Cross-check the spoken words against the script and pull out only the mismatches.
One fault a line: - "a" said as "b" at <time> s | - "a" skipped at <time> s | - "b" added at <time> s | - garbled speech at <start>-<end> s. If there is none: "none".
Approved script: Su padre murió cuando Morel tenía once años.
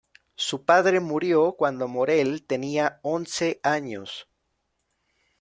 none